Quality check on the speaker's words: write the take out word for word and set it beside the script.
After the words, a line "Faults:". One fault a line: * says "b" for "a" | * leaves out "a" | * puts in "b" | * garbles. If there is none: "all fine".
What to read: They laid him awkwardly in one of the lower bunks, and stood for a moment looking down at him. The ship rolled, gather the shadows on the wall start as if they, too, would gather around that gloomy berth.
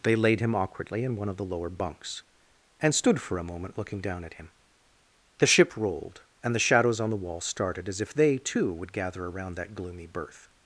They laid him awkwardly in one of the lower bunks, and stood for a moment looking down at him. The ship rolled, and the shadows on the wall started as if they, too, would gather around that gloomy berth.
Faults:
* says "and" for "gather"
* says "started" for "start"